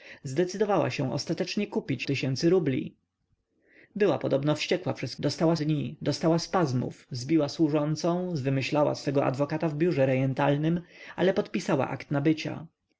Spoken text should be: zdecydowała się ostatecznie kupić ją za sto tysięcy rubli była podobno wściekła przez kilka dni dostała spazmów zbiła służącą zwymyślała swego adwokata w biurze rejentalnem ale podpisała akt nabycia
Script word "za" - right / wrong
wrong